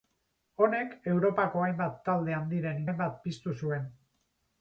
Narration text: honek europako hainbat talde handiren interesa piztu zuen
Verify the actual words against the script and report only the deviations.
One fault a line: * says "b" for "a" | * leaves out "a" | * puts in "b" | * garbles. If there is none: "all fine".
* says "hainbat" for "interesa"